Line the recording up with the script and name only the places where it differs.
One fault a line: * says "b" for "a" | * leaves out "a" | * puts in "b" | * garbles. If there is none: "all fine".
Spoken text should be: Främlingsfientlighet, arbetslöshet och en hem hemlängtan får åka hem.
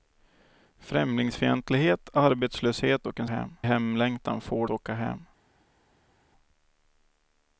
all fine